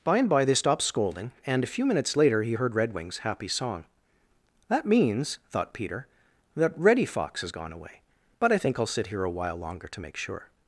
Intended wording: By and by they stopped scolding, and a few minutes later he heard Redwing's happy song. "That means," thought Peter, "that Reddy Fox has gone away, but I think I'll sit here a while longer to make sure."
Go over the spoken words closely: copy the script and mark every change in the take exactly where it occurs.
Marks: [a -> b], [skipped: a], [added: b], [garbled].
By and by they stopped scolding, and a few minutes later he heard Redwing's happy song. "That means," thought Peter, "that Reddy Fox has gone away, but I think I'll sit here a while longer to make sure."